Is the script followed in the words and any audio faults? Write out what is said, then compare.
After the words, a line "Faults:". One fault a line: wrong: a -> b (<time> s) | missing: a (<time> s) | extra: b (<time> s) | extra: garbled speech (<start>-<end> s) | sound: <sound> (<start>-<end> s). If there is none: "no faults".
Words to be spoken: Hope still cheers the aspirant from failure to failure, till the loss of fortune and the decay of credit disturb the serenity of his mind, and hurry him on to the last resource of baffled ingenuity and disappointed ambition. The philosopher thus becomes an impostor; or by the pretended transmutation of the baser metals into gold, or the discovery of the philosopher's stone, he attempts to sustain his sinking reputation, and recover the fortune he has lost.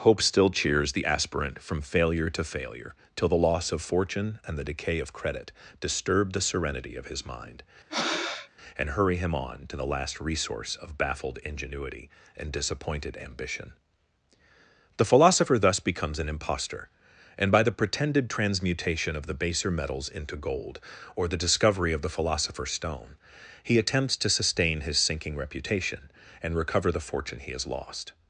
Hope still cheers the aspirant from failure to failure, till the loss of fortune and the decay of credit disturb the serenity of his mind, and hurry him on to the last resource of baffled ingenuity and disappointed ambition. The philosopher thus becomes an impostor; and by the pretended transmutation of the baser metals into gold, or the discovery of the philosopher's stone, he attempts to sustain his sinking reputation, and recover the fortune he has lost.
Faults:
sound: breath (7.9-8.5 s)
wrong: or -> and (17.4 s)